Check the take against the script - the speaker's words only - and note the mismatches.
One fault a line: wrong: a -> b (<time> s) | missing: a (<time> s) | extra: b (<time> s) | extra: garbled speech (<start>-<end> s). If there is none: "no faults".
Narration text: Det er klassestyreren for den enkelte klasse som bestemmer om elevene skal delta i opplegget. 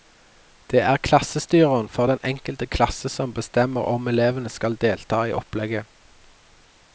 no faults